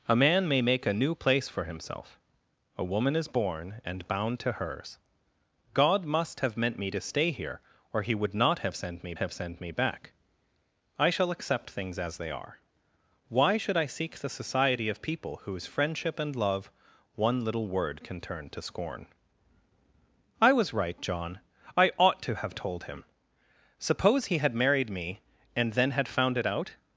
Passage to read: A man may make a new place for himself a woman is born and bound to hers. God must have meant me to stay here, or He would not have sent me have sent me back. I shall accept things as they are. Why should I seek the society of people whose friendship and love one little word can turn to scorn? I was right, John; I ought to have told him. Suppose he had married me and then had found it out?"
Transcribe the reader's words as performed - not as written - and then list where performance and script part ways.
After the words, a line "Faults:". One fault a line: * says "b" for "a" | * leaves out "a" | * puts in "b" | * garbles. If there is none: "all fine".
A man may make a new place for himself a woman is born and bound to hers. God must have meant me to stay here, or He would not have sent me have sent me back. I shall accept things as they are. Why should I seek the society of people whose friendship and love one little word can turn to scorn? I was right, John; I ought to have told him. Suppose he had married me and then had found it out?"
Faults:
all fine